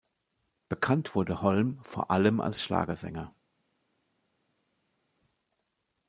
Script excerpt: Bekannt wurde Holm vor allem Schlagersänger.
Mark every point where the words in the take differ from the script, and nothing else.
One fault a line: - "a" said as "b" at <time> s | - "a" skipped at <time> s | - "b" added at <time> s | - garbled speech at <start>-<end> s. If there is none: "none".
- "als" added at 2.4 s